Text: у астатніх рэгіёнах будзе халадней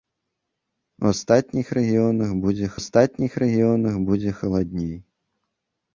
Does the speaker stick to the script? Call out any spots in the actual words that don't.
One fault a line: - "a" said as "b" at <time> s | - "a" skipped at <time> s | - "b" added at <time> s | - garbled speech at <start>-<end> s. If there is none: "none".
- "астатніх рэгіёнах будзе" added at 2.8 s